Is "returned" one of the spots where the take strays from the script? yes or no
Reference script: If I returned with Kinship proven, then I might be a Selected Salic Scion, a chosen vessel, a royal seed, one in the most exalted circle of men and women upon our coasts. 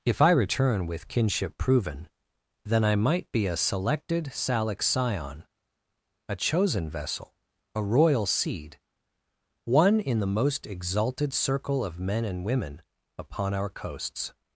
yes